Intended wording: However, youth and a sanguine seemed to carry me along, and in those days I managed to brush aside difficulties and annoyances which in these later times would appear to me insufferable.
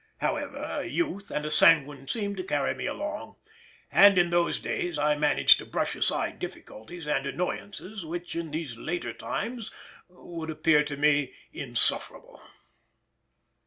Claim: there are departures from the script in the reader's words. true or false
false